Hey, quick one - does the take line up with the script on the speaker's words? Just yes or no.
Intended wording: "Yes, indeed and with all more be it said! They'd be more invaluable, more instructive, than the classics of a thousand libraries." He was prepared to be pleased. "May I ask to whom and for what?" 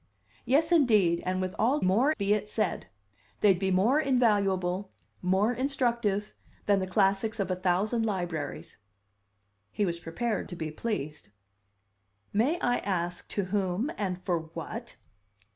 yes